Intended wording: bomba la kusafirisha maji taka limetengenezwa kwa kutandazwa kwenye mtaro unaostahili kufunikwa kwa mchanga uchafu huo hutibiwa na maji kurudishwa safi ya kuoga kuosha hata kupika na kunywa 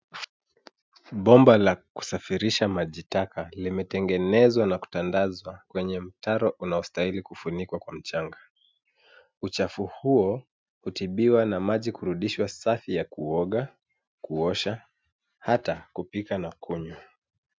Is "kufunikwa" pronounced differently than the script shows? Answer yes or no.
no